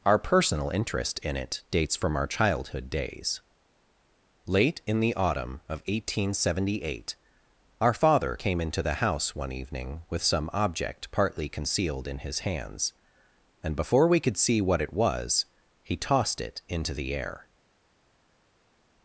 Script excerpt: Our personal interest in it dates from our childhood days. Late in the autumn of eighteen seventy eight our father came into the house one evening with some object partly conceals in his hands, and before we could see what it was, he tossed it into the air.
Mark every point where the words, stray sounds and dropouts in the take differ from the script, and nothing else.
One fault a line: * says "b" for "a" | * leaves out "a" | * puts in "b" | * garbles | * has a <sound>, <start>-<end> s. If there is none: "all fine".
* says "concealed" for "conceals"